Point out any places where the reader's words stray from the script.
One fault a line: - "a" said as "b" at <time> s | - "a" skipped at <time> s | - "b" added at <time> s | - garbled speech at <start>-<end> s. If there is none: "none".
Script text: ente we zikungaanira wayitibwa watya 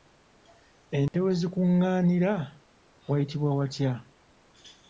none